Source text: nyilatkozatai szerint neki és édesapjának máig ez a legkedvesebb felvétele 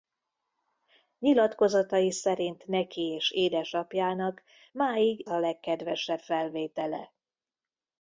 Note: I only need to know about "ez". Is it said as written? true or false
false